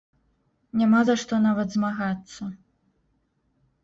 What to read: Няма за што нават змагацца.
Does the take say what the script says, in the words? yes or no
yes